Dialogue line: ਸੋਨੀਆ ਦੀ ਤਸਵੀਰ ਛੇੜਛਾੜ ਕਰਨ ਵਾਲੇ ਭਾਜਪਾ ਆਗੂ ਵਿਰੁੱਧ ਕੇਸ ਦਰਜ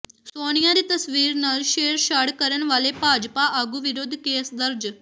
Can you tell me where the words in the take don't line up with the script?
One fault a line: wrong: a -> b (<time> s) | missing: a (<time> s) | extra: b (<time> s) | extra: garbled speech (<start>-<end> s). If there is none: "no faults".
extra: ਨਾਲ (1.4 s)